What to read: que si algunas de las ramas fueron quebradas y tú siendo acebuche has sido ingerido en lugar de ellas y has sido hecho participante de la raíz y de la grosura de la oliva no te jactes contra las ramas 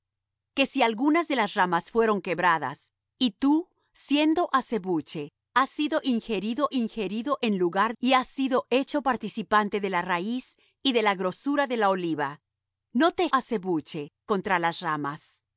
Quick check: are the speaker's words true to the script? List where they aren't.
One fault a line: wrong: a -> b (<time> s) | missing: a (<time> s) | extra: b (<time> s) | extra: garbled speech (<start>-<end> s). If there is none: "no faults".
extra: ingerido (6.7 s)
missing: de ellas (7.9 s)
wrong: jactes -> acebuche (13.3 s)